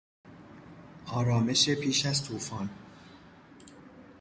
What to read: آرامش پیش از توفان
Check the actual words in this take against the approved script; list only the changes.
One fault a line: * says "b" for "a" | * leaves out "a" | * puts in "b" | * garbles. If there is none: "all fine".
all fine